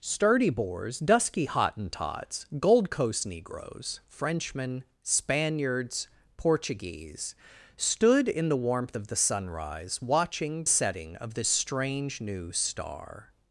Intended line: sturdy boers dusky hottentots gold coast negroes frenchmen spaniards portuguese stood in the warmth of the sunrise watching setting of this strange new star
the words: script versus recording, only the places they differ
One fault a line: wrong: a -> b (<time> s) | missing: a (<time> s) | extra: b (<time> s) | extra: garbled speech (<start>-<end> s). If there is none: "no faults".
no faults